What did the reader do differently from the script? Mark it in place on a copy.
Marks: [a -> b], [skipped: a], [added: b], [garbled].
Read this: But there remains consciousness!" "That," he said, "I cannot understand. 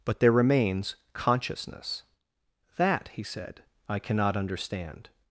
But there remains consciousness!" "That," he said, "I cannot understand.